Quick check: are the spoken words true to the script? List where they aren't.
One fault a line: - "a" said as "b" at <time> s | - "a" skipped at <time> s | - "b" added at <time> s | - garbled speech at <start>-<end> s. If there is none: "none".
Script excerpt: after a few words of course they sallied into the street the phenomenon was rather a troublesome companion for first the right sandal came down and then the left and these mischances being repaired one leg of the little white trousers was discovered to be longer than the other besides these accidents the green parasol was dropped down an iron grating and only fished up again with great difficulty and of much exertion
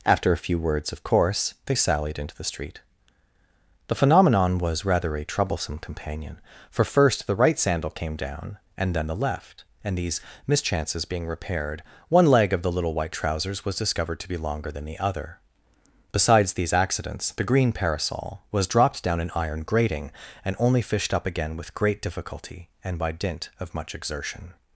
- "by dint" added at 23.0 s